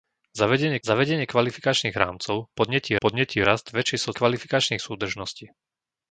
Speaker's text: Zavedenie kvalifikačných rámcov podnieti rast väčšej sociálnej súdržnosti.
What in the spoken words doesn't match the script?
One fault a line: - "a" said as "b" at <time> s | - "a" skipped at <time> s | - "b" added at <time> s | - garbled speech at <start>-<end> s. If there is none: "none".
- "zavedenie" added at 0.8 s
- "podnieti" added at 3.0 s
- "sociálnej" said as "kvalifikačných" at 4.1 s